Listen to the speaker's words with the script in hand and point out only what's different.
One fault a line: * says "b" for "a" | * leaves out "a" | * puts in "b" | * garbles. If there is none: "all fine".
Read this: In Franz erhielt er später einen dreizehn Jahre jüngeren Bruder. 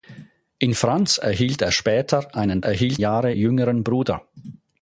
* says "erhielt" for "dreizehn"